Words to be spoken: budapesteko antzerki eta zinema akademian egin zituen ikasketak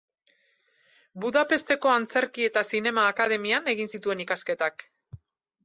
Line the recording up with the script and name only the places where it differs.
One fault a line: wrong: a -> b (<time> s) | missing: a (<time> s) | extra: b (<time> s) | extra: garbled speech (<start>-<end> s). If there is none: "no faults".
no faults